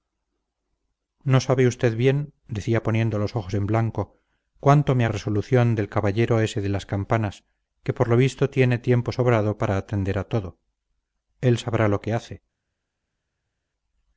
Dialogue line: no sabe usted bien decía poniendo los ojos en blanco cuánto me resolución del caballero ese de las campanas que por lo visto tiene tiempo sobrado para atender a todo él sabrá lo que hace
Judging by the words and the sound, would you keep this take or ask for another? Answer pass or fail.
pass